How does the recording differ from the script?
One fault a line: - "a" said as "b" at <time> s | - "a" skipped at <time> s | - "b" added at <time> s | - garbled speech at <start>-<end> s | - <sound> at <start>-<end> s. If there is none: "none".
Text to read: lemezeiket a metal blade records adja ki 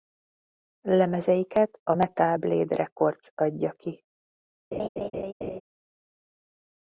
- laugh at 4.7-5.6 s